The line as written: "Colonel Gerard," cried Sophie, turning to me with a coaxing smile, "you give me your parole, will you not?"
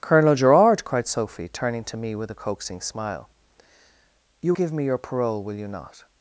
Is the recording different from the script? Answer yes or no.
no